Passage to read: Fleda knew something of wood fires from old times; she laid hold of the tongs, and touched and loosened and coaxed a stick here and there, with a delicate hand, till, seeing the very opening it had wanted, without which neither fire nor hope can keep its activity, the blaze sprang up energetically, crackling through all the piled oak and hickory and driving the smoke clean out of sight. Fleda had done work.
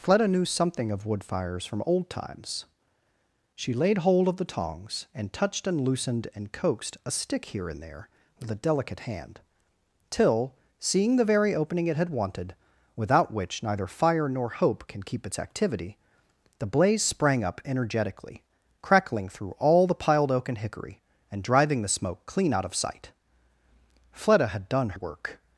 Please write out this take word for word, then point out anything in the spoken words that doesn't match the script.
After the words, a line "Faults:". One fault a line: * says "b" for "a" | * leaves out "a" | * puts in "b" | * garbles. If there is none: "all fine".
Fleda knew something of wood fires from old times; she laid hold of the tongs, and touched and loosened and coaxed a stick here and there, with a delicate hand, till, seeing the very opening it had wanted, without which neither fire nor hope can keep its activity, the blaze sprang up energetically, crackling through all the piled oak and hickory and driving the smoke clean out of sight. Fleda had done work.
Faults:
all fine